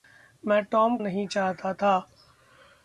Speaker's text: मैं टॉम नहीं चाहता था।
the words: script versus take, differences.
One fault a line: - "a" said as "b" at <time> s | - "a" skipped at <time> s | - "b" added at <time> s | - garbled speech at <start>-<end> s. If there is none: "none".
none